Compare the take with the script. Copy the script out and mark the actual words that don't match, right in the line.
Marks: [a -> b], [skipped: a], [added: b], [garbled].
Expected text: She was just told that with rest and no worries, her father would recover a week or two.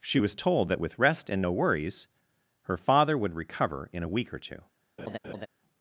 She was [skipped: just] told that with rest and no worries, her father would recover [added: in] a week or two.